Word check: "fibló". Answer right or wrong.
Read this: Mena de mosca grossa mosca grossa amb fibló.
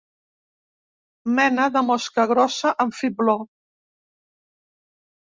right